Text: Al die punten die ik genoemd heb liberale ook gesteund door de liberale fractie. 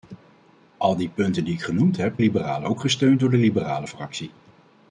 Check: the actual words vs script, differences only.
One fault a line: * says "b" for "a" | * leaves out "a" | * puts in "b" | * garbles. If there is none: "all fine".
all fine